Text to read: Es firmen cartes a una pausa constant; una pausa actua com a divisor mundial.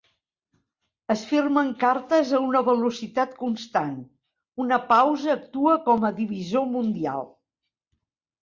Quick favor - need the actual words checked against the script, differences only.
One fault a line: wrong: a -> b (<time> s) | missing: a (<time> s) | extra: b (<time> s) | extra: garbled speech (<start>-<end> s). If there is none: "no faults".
wrong: pausa -> velocitat (2.7 s)